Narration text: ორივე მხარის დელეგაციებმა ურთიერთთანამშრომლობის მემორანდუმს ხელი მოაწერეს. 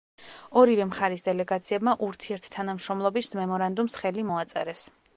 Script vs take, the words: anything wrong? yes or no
no